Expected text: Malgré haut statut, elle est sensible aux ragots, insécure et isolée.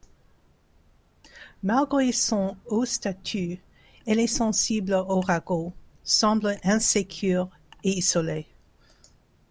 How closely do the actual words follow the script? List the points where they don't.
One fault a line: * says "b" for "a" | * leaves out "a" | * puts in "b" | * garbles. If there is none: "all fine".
* puts in "son"
* puts in "semble"